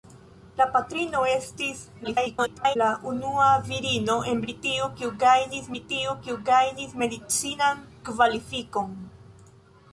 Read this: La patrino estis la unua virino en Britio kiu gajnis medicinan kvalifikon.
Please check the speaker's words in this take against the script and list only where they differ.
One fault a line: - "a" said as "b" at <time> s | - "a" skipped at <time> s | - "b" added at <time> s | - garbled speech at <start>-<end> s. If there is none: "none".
- garbled speech at 2.0-2.8 s
- "Britio kiu gajnis" added at 5.7 s